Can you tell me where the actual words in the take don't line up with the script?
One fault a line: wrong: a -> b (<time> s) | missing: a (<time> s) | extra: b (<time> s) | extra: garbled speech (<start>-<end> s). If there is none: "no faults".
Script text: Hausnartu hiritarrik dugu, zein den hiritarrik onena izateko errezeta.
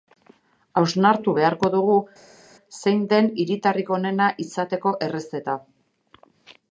wrong: hiritarrik -> beharko (1.4 s)